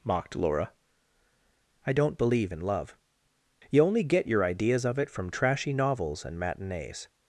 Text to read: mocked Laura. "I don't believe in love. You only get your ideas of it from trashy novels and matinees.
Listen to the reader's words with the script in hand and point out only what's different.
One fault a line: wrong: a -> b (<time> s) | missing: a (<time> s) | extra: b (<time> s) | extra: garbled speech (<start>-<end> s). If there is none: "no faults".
no faults